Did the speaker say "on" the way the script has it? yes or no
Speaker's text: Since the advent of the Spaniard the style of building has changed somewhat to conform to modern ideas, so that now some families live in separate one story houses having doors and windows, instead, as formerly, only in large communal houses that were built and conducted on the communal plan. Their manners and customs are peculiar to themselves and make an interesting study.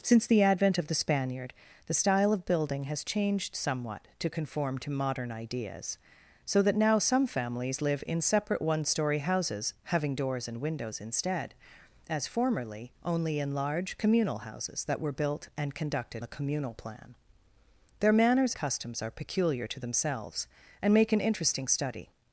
no